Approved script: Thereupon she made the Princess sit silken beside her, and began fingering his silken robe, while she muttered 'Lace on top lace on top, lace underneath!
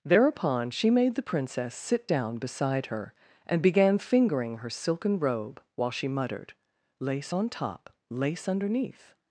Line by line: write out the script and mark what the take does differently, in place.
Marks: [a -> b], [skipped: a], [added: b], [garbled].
Thereupon she made the Princess sit [silken -> down] beside her, and began fingering [his -> her] silken robe, while she muttered 'Lace on top lace [skipped: on top, lace] underneath!